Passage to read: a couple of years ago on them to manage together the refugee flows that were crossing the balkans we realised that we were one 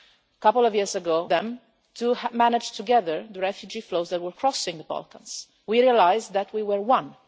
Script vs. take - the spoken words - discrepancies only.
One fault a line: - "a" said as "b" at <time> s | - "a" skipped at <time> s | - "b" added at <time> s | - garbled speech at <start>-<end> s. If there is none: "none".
none